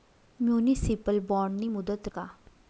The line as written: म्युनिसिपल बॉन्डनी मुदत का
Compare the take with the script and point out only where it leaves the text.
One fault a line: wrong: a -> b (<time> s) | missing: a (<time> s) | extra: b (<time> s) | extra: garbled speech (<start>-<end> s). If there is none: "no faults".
no faults